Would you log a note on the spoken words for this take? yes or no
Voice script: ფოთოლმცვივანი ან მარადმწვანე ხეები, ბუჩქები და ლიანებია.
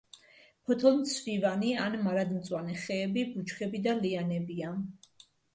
no